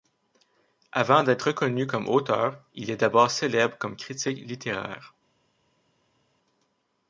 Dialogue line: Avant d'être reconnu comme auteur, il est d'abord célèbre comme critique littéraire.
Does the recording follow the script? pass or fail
pass